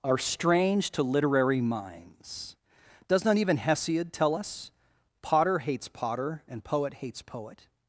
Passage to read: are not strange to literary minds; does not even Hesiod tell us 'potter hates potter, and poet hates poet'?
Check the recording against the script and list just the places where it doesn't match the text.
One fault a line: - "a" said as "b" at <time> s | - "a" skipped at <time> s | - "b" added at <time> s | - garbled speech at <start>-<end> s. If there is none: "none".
- "not" skipped at 0.2 s